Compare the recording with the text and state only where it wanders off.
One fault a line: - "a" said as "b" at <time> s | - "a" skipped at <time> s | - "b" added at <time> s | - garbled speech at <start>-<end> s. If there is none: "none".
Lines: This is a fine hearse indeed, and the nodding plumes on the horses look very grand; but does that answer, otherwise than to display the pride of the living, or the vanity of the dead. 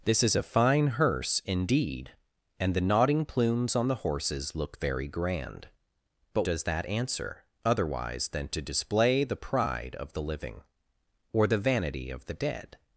none